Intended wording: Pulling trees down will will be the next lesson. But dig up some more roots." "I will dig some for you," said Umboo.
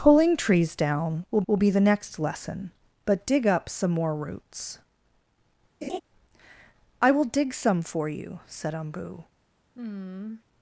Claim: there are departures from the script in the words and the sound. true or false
true